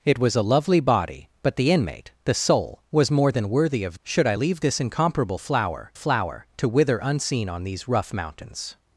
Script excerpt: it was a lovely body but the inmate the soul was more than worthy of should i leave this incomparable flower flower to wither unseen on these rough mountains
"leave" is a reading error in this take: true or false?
false